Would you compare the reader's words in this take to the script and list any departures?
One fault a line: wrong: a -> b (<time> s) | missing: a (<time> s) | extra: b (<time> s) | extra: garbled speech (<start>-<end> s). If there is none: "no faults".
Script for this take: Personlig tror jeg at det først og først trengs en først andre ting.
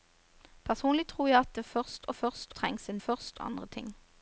no faults